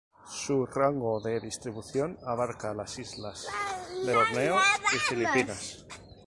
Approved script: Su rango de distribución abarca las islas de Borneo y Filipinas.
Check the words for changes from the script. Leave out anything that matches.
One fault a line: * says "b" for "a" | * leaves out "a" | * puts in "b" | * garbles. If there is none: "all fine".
all fine